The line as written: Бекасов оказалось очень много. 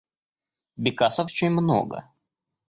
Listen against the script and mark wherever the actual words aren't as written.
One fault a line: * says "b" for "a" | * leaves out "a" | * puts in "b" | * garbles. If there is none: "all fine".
* leaves out "оказалось"